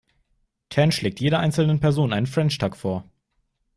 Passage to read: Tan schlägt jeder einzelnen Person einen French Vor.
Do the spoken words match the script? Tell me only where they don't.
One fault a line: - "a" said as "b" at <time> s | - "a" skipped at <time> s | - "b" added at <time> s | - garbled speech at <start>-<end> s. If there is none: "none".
- "Tuck" added at 2.6 s